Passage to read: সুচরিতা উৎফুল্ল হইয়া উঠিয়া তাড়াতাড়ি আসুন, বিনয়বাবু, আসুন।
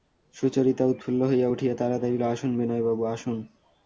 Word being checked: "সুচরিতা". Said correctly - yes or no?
yes